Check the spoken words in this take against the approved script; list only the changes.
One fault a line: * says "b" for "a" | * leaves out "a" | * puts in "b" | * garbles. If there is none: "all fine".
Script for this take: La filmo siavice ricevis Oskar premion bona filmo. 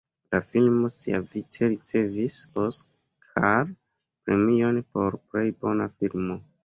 * puts in "por plej"